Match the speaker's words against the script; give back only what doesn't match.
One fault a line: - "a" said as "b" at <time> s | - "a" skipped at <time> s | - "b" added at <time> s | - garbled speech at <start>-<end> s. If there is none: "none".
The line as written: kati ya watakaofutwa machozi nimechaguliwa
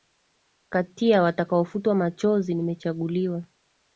none